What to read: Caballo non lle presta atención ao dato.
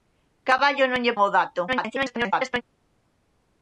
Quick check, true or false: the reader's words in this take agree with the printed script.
false